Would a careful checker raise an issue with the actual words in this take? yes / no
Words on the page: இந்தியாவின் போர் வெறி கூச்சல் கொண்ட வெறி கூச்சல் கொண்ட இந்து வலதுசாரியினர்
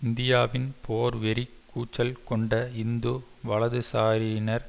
yes